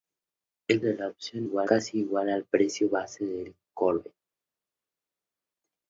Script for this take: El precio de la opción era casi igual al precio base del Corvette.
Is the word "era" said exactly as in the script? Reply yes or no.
no